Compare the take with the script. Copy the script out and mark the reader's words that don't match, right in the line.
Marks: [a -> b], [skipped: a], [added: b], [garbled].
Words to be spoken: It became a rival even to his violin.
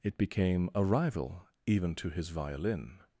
It became a rival even to his violin.